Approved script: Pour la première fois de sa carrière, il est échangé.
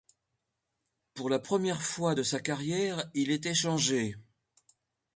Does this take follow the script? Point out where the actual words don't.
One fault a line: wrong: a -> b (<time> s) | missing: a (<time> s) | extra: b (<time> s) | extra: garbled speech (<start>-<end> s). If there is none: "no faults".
no faults